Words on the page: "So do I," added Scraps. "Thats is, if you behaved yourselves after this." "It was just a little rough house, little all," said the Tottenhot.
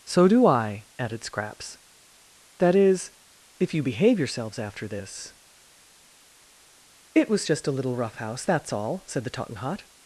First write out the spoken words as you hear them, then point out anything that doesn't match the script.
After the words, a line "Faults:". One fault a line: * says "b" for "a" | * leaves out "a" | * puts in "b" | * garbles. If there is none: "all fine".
"So do I," added Scraps. "That is, if you behave yourselves after this." "It was just a little rough house, that's all," said the Tottenhot.
Faults:
* says "That" for "Thats"
* says "behave" for "behaved"
* says "that's" for "little"